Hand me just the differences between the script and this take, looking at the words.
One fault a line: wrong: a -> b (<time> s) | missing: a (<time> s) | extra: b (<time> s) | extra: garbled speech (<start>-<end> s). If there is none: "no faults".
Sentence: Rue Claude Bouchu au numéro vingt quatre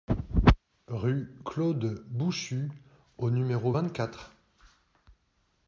no faults